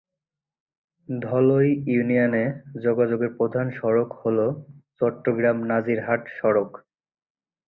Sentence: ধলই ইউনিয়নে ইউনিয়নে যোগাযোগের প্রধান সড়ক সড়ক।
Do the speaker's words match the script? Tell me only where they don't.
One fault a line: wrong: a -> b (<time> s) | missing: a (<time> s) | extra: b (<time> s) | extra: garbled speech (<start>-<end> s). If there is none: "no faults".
missing: ইউনিয়নে (2.4 s)
extra: হল চট্টগ্রাম নাজিরহাট (4.2 s)